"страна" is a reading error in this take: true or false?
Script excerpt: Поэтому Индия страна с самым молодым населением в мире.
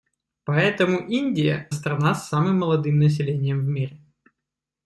false